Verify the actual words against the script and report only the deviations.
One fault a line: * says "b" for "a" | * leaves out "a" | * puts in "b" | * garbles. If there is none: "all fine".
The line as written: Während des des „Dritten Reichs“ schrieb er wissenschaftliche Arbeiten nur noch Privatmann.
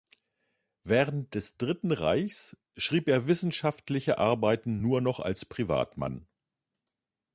* leaves out "des"
* puts in "als"